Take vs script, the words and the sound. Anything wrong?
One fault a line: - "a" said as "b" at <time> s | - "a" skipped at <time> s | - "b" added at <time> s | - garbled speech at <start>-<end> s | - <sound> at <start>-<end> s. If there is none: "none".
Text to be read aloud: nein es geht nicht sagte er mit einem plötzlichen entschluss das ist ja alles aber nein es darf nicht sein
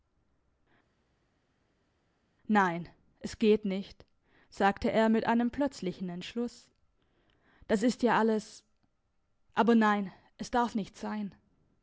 none